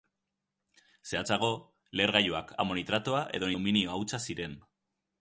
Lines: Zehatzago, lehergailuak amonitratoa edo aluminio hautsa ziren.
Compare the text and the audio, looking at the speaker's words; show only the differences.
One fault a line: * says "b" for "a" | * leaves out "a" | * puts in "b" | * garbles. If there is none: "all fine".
all fine